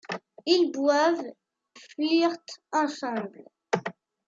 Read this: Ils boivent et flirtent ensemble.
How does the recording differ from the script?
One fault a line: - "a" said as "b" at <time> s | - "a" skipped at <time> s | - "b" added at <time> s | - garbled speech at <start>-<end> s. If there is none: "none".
- "et" skipped at 1.2 s